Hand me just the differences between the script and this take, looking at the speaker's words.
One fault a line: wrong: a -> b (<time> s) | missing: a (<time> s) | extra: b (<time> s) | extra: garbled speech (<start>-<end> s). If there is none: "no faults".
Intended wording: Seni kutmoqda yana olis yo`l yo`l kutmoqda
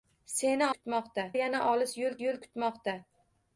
no faults